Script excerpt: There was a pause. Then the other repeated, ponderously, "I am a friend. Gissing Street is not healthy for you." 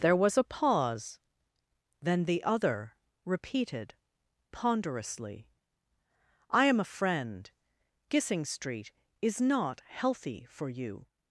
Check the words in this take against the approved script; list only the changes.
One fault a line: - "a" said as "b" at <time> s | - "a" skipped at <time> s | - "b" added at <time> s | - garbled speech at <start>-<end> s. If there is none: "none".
none